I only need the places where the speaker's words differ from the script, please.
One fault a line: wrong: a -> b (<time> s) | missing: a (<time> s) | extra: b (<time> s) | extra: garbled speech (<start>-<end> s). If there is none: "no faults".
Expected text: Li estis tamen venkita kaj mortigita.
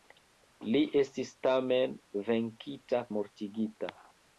missing: kaj (3.0 s)